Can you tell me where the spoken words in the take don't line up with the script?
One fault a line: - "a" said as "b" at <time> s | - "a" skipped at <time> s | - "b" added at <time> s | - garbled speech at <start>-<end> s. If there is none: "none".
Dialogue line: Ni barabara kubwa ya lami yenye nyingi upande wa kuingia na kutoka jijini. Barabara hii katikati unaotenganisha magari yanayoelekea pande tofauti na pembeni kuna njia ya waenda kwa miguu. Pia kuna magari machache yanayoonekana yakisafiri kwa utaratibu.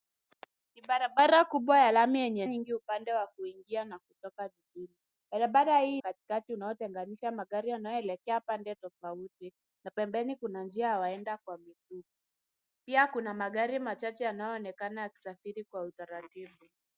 none